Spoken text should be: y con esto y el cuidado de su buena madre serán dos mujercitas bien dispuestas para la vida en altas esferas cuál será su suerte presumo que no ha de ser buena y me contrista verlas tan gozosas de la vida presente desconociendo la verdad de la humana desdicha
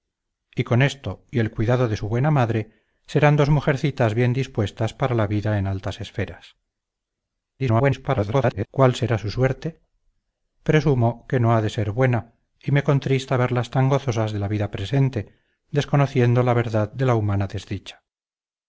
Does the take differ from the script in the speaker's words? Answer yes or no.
yes